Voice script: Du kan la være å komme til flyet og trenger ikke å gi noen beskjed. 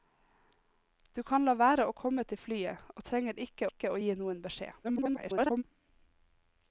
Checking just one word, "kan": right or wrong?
right